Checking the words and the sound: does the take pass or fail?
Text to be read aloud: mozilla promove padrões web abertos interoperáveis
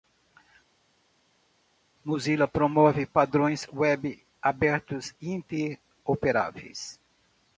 pass